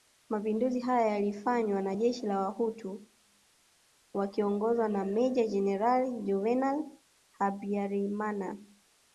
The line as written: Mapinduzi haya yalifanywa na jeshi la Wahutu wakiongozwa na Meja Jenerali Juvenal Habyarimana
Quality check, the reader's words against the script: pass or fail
pass